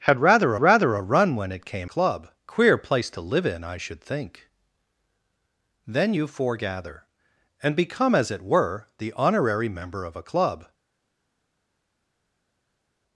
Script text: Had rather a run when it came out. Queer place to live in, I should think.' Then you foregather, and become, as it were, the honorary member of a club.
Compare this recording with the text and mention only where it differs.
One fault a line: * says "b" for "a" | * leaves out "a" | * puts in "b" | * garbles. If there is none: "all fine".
* puts in "rather"
* says "club" for "out"